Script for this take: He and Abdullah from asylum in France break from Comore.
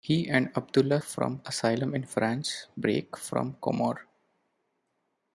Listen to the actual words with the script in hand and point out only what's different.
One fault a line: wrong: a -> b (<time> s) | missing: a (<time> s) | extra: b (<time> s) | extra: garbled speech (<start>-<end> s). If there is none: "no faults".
no faults